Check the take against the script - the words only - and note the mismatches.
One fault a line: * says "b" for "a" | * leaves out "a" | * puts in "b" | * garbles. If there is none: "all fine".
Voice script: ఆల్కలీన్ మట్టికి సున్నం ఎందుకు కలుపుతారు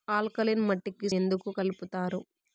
* leaves out "సున్నం"